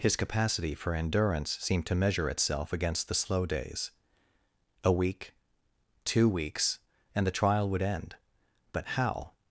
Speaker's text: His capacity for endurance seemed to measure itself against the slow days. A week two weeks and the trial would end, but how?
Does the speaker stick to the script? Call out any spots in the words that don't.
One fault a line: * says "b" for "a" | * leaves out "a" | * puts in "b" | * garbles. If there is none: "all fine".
all fine